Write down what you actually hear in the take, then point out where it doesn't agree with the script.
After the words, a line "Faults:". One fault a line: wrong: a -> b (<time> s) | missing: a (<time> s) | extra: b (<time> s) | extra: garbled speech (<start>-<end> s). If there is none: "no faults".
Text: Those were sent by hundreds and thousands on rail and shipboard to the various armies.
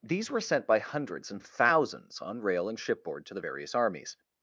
These were sent by hundreds and thousands on rail and shipboard to the various armies.
Faults:
wrong: Those -> These (0.0 s)